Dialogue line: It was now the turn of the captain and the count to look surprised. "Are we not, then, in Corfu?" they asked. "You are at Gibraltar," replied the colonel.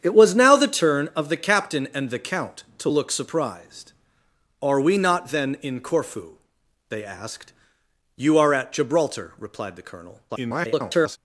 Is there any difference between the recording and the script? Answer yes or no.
yes